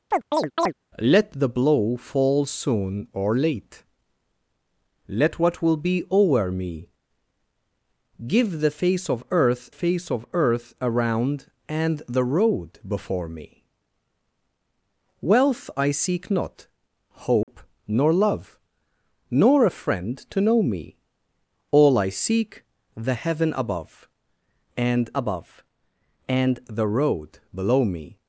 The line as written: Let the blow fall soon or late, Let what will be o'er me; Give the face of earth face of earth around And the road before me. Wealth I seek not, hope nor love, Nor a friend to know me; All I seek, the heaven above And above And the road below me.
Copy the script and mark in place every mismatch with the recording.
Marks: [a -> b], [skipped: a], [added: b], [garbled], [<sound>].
[chirp] Let the blow fall soon or late, Let what will be o'er me; Give the face of earth face of earth around And the road before me. Wealth I seek not, hope [dropout] nor love, Nor a friend to know me; All I seek, the heaven above And above And the road below me.